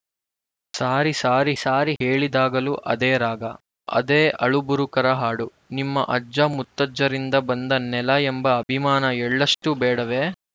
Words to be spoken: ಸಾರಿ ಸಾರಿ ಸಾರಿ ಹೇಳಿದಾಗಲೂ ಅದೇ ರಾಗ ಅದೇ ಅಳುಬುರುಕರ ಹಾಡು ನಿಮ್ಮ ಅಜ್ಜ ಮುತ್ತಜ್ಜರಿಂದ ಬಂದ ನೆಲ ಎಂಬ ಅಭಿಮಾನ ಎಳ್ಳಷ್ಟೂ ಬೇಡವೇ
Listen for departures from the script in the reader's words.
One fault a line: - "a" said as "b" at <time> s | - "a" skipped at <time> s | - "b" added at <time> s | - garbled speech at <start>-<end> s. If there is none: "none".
none